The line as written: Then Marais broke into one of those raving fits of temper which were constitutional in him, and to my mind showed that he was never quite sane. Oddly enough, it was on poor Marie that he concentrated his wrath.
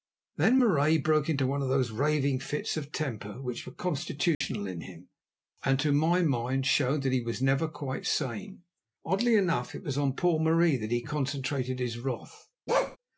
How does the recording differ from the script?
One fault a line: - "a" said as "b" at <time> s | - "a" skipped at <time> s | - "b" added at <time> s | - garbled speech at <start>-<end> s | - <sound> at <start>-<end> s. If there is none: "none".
- dropout at 4.3-4.4 s
- bark at 12.7-13.0 s